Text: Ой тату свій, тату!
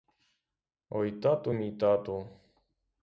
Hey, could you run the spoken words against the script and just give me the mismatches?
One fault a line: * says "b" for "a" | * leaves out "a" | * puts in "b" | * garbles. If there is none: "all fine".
* says "мій" for "свій"